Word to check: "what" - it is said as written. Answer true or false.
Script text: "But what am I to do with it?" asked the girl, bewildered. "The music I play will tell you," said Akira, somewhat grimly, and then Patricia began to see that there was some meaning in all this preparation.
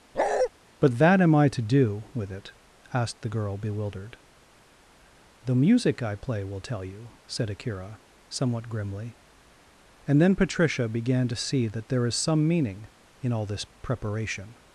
false